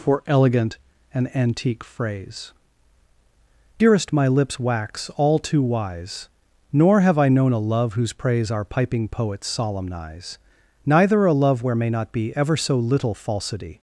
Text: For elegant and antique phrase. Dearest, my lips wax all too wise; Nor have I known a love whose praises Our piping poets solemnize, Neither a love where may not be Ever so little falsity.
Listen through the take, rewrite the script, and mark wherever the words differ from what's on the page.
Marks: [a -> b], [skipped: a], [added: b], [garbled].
For elegant and antique phrase. Dearest, my lips wax all too wise; Nor have I known a love whose [praises -> praise] Our piping poets solemnize, Neither a love where may not be Ever so little falsity.